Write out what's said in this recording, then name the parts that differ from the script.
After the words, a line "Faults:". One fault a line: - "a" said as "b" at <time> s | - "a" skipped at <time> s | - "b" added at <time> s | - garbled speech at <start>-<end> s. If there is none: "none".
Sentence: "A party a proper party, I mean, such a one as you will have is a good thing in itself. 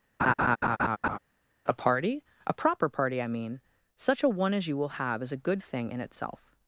"A party a proper party, I mean, such a one as you will have is a good thing in itself.
Faults:
none